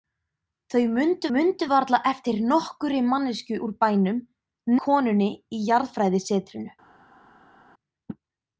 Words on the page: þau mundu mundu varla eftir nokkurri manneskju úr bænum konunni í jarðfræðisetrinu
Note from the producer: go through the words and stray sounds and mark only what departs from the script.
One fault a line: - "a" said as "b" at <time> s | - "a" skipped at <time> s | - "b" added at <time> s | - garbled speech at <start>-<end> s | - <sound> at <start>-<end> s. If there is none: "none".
none